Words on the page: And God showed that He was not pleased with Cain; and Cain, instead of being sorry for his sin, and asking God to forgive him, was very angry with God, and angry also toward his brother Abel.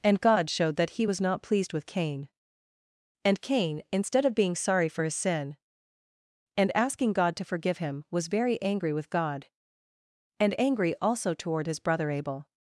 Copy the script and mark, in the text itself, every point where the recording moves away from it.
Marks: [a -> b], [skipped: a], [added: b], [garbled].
And God showed that He was not pleased with Cain; and Cain, instead of being sorry for his sin, and asking God to forgive him, was very angry with God, and angry also toward his brother Abel.